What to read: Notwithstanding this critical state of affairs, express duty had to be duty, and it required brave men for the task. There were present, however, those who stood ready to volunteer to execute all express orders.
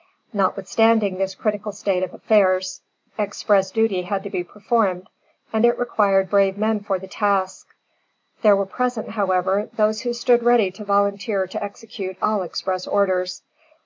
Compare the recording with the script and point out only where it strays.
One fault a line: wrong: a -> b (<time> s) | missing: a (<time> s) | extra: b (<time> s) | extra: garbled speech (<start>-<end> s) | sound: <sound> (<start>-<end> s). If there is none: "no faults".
wrong: duty -> performed (4.4 s)